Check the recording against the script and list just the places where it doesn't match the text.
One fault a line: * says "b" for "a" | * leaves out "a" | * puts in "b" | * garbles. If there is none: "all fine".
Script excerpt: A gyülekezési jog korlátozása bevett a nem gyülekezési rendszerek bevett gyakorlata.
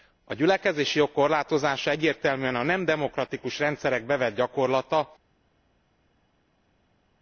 * says "egyértelműen" for "bevett"
* says "demokratikus" for "gyülekezési"